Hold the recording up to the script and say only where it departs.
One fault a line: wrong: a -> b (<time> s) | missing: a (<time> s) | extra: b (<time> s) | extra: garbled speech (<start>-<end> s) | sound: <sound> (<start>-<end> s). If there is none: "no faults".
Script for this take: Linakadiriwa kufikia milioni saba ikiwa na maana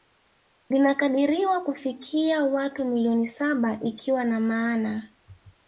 extra: watu (2.4 s)